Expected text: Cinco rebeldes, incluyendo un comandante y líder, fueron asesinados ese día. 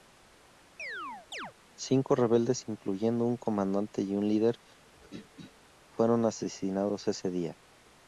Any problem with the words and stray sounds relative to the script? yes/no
yes